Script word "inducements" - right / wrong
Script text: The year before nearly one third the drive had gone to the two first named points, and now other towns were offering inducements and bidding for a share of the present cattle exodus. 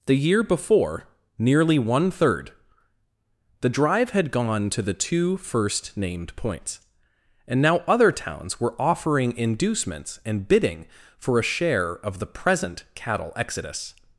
right